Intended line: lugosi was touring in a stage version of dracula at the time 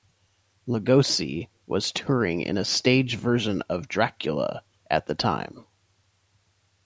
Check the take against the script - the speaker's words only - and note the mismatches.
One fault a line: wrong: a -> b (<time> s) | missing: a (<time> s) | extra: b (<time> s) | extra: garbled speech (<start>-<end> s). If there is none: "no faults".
no faults